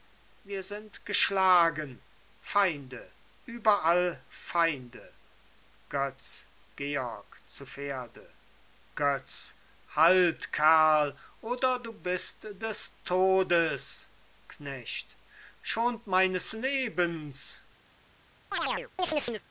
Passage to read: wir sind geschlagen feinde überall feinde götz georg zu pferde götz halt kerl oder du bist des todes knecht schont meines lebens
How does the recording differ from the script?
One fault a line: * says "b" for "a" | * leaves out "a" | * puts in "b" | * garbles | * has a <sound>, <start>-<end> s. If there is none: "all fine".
* has a chirp, 18.5-19.5 s